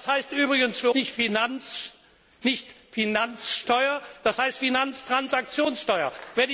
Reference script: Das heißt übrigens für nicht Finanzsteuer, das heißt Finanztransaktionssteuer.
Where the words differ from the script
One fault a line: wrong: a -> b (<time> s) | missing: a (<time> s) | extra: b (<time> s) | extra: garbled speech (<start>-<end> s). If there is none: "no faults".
no faults